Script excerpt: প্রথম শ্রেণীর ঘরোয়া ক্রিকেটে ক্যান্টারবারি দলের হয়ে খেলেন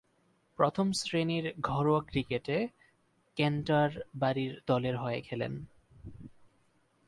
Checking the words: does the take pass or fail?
pass